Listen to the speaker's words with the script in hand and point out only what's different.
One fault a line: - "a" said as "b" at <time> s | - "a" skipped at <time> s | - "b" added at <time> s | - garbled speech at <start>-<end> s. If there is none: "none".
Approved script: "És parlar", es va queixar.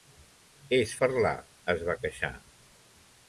none